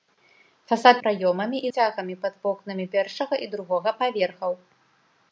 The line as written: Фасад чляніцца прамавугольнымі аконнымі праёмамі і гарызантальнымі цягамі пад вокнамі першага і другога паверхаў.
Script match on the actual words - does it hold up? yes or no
no